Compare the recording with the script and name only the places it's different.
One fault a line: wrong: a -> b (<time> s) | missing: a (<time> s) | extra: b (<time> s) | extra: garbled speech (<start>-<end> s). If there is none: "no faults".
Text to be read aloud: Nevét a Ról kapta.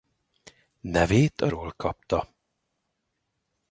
no faults